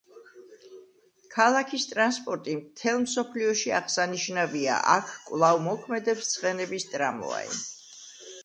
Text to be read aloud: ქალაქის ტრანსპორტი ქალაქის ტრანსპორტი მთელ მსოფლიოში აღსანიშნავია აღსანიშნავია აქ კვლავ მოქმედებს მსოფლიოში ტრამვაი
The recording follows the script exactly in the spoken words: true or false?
false